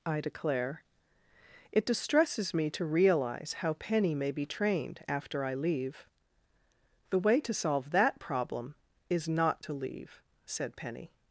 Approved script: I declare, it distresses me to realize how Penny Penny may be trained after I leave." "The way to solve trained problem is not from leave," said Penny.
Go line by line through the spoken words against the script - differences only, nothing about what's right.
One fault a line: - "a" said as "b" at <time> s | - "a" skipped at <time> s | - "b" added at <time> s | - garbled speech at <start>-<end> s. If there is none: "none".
- "Penny" skipped at 4.2 s
- "trained" said as "that" at 7.9 s
- "from" said as "to" at 9.6 s